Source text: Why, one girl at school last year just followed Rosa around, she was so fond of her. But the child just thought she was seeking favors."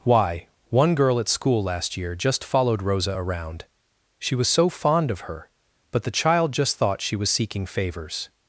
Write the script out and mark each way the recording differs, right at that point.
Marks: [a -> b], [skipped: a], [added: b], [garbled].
Why, one girl at school last year just followed Rosa around, she was so fond of her. But the child just thought she was seeking favors."